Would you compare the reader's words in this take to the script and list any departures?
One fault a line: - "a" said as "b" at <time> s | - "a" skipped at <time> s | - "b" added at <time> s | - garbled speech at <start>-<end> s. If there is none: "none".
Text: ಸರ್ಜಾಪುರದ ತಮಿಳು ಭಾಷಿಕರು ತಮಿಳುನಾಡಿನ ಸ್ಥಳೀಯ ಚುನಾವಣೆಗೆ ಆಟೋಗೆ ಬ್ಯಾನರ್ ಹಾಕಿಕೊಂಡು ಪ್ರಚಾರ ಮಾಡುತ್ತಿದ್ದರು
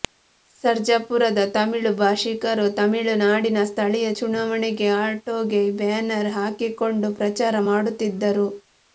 none